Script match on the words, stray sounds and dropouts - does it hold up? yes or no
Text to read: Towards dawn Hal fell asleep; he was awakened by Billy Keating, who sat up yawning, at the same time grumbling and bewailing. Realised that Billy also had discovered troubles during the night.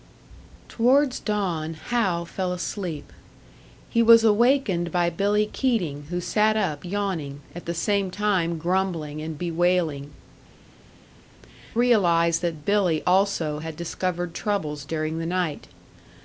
yes